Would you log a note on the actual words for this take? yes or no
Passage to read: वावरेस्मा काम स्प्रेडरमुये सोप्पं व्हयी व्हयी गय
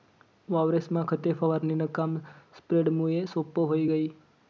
yes